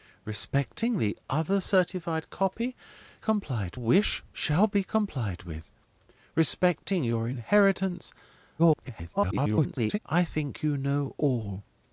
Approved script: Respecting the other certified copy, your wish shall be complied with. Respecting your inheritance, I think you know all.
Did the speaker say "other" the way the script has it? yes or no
yes